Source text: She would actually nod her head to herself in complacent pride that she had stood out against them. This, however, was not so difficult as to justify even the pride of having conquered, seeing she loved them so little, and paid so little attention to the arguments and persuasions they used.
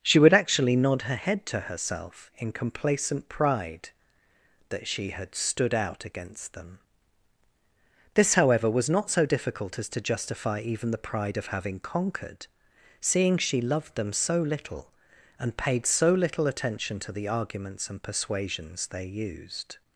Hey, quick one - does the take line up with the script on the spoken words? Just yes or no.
yes